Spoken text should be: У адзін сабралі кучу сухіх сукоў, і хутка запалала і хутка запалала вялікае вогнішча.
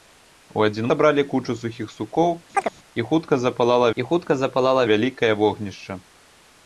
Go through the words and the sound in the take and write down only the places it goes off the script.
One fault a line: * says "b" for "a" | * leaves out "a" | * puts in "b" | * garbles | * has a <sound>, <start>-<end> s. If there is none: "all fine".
* has a chirp, 2.5-2.7 s